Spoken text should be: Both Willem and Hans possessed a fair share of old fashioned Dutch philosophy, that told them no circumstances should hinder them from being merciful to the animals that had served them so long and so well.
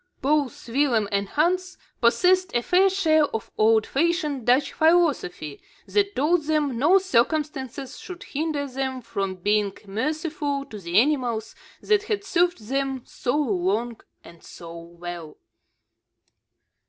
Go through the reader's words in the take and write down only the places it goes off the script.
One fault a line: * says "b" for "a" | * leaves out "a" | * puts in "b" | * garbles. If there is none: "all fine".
all fine